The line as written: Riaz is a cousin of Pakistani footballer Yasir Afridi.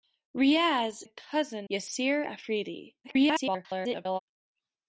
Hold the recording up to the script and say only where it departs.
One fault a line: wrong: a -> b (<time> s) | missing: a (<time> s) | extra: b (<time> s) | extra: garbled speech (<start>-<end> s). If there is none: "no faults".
missing: is (1.0 s)
missing: of Pakistani footballer (1.7 s)
extra: garbled speech (3.0-4.2 s)